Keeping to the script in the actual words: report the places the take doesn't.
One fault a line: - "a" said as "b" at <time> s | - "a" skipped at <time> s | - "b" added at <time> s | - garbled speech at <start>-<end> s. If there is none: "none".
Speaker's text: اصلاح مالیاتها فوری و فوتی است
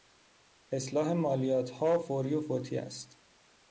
none